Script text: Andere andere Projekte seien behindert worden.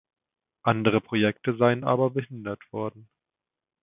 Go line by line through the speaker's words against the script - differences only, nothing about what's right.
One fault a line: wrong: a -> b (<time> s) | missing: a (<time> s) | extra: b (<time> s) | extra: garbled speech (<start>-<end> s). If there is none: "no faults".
missing: andere (1.0 s)
extra: aber (1.8 s)